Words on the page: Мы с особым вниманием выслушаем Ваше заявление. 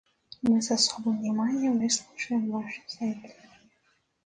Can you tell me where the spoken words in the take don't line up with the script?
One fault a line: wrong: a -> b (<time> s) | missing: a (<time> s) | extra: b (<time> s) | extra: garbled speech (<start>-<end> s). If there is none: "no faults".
no faults